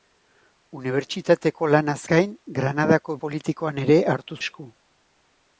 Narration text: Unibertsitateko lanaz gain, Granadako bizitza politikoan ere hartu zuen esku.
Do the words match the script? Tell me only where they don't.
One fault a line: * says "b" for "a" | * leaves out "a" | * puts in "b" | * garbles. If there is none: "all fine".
* leaves out "bizitza"
* leaves out "zuen"